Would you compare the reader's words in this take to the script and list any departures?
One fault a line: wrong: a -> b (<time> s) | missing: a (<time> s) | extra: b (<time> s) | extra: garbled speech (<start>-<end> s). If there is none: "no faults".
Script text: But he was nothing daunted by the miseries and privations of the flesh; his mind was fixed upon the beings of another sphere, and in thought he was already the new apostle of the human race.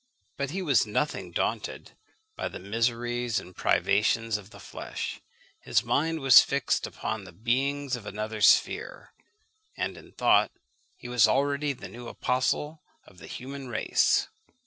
no faults